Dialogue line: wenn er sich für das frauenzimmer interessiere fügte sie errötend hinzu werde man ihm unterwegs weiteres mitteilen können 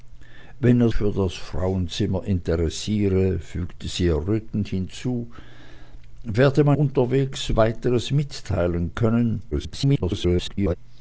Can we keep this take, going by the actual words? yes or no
no